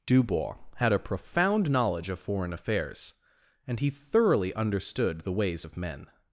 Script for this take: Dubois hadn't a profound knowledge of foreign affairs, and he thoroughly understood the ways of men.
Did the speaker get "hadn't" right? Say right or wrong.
wrong